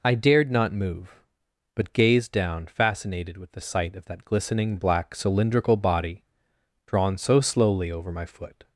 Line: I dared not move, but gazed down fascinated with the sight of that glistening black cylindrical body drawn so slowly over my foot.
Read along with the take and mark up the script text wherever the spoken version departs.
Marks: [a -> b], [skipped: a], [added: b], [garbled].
I dared not move, but gazed down fascinated with the sight of that glistening black cylindrical body drawn so slowly over my foot.